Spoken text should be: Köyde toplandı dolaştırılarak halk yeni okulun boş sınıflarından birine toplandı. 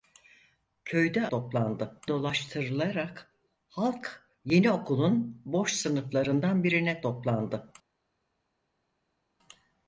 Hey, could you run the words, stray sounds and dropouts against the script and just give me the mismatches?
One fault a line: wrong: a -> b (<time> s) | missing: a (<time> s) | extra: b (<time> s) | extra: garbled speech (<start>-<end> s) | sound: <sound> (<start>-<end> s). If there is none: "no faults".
no faults